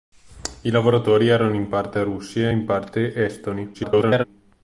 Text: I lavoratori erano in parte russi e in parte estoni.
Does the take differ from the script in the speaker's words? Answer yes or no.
yes